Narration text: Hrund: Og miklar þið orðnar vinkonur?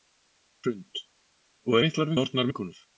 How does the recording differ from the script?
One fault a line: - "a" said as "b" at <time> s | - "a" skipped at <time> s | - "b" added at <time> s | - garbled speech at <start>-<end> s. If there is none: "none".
none